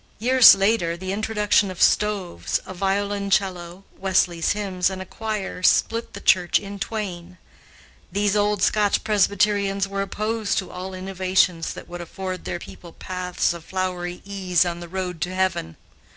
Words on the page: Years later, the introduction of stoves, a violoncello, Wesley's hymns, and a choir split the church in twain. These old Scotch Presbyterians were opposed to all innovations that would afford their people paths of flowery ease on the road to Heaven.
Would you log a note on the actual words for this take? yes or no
no